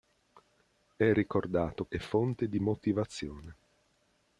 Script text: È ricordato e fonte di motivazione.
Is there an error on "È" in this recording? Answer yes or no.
no